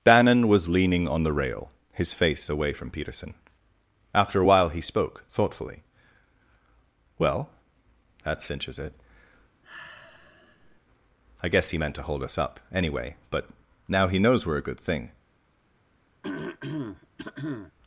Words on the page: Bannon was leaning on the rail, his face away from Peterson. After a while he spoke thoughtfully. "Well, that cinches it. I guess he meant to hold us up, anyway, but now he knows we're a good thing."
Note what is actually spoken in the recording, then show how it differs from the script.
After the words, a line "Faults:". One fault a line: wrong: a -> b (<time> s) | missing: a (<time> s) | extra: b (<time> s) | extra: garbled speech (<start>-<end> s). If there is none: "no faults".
Bannon was leaning on the rail, his face away from Peterson. After a while he spoke thoughtfully. "Well, that cinches it. I guess he meant to hold us up, anyway, but now he knows we're a good thing."
Faults:
no faults